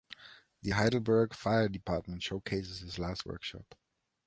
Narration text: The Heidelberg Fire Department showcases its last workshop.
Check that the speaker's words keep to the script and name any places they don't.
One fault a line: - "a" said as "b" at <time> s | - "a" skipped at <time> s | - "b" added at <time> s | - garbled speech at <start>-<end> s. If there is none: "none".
- "its" said as "his" at 2.8 s